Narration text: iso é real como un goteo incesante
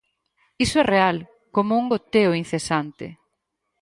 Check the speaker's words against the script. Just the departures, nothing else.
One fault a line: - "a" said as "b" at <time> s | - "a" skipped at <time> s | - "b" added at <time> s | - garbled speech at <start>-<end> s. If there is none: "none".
none